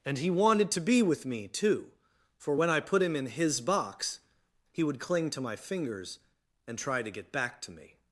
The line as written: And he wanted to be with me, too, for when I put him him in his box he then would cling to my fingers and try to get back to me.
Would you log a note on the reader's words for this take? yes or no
yes